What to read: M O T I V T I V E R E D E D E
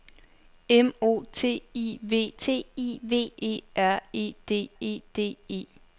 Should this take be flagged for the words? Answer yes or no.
no